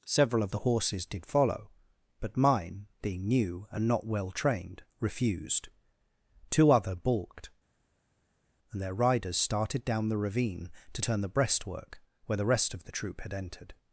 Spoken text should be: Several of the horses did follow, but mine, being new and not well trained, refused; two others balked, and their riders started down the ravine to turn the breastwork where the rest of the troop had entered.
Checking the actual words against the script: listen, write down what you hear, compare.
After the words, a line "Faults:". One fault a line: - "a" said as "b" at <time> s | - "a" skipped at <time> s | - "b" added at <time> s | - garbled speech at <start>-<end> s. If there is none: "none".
Several of the horses did follow, but mine, being new and not well trained, refused; two other balked, and their riders started down the ravine to turn the breastwork where the rest of the troop had entered.
Faults:
- "others" said as "other" at 6.7 s